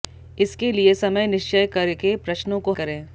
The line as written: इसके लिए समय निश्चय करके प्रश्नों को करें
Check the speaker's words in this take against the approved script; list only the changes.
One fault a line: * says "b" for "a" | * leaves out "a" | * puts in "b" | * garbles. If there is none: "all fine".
all fine